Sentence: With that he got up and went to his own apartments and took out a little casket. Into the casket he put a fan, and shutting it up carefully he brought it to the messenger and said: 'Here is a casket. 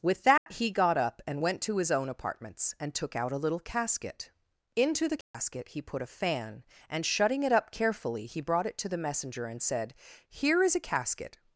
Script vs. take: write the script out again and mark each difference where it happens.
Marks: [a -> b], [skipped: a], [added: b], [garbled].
With that he got up and went to his own apartments and took out a little casket. Into the casket he put a fan, and shutting it up carefully he brought it to the messenger and said: 'Here is a casket.